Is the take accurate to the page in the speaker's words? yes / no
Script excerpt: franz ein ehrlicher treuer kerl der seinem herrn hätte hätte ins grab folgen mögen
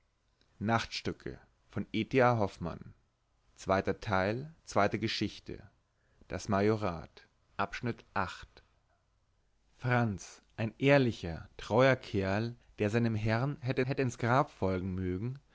yes